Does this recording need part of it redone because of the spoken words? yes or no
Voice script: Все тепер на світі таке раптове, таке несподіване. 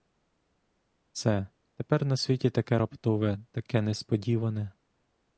no